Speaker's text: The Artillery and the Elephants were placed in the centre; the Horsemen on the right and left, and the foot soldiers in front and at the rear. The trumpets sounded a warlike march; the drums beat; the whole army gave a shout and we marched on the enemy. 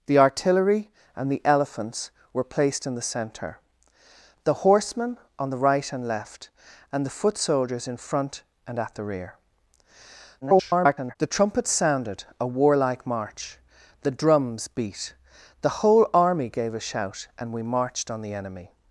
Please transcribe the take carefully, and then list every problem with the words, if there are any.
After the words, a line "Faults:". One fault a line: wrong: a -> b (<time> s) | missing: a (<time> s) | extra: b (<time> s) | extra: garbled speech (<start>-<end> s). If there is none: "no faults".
The Artillery and the Elephants were placed in the centre; the Horsemen on the right and left, and the foot soldiers in front and at the rear. [garbled] The trumpets sounded a warlike march; the drums beat; the whole army gave a shout and we marched on the enemy.
Faults:
extra: garbled speech (10.4-11.2 s)